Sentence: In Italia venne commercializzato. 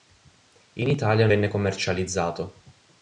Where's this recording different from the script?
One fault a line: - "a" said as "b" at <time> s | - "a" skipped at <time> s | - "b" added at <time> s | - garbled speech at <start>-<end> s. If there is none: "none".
none